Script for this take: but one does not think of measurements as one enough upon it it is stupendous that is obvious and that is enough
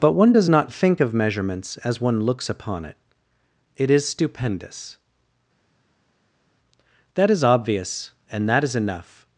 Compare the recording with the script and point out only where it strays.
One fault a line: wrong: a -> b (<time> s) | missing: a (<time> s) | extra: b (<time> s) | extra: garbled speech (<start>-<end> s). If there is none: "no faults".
wrong: enough -> looks (2.2 s)